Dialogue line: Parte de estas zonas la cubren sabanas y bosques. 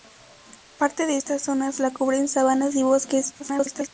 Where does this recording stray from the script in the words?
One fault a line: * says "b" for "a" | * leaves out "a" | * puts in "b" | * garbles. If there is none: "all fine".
* garbles